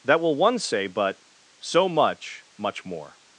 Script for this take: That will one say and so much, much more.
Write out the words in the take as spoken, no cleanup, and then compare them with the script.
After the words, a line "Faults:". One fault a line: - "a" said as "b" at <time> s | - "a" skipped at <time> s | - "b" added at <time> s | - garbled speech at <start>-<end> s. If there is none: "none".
That will one say but so much, much more.
Faults:
- "and" said as "but" at 0.9 s